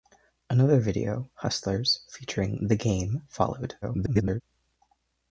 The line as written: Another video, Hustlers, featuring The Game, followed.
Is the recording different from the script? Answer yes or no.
yes